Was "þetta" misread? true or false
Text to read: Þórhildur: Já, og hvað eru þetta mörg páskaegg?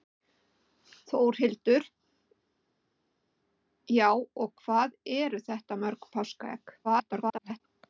false